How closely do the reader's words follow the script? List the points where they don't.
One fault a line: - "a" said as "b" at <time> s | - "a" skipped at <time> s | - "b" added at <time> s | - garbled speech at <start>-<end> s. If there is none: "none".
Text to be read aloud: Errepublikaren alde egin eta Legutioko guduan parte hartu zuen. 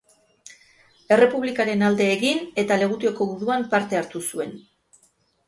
none